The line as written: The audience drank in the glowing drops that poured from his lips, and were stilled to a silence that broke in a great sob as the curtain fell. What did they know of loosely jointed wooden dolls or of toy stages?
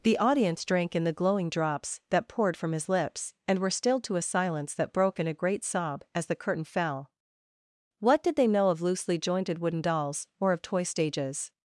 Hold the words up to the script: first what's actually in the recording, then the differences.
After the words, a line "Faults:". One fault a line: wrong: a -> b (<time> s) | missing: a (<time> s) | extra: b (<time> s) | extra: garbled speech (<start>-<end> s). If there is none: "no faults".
The audience drank in the glowing drops that poured from his lips, and were stilled to a silence that broke in a great sob as the curtain fell. What did they know of loosely jointed wooden dolls or of toy stages?
Faults:
no faults